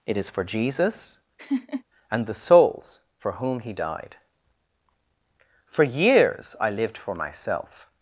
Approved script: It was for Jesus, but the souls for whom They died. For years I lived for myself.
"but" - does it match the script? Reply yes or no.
no